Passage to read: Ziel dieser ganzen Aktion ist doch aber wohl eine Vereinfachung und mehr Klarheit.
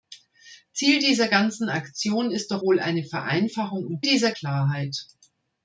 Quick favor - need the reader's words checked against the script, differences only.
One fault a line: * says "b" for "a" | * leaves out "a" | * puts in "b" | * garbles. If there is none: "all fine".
* leaves out "aber"
* says "dieser" for "mehr"